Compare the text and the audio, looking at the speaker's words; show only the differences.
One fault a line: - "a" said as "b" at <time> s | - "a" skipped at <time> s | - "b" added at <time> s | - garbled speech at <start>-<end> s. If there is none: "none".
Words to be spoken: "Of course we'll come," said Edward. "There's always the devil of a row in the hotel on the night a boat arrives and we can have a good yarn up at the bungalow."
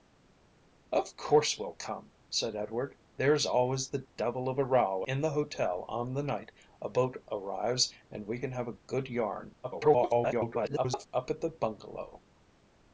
- garbled speech at 9.6-11.1 s